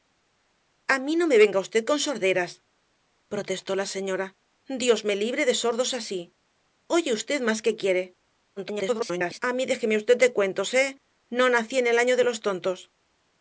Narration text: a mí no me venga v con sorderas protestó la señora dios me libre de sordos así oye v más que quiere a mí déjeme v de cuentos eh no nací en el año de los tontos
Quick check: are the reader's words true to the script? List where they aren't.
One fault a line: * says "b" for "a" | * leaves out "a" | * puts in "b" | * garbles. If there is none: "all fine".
* garbles